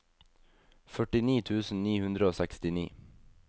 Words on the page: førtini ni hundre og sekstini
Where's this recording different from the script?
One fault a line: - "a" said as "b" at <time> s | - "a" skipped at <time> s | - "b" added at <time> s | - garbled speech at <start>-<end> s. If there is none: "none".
- "tusen" added at 1.5 s